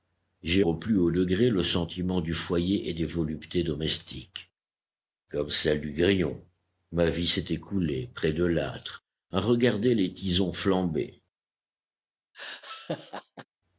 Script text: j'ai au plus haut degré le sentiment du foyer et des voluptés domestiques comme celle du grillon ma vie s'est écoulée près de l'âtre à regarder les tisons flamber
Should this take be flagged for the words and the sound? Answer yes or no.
yes